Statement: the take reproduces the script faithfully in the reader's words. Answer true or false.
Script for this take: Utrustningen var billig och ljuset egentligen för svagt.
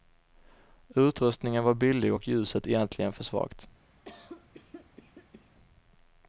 true